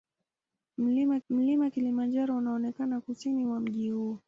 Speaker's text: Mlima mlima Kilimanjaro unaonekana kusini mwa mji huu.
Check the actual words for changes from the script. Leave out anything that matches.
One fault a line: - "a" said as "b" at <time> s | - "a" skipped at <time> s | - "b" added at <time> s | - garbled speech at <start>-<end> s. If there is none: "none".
none